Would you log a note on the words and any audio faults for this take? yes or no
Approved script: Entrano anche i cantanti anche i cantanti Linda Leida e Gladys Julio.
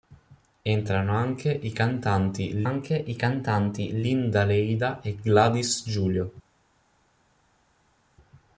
no